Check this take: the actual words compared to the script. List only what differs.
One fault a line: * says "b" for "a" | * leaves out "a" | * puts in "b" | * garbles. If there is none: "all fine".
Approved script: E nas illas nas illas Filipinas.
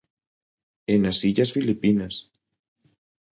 * leaves out "nas illas"